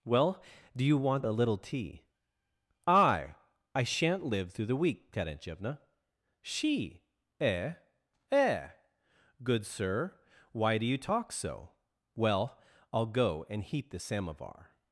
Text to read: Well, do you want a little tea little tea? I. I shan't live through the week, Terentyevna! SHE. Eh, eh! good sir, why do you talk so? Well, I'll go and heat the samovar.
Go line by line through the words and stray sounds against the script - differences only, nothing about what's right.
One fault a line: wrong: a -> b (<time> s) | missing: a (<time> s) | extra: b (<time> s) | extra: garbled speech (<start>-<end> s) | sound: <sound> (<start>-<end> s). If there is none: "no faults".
missing: little tea (2.0 s)